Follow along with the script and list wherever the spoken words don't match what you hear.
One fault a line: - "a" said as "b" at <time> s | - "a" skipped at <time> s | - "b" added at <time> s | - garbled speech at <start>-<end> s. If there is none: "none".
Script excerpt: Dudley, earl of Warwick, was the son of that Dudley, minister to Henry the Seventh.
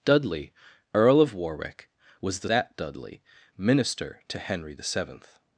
- "son of" skipped at 2.5 s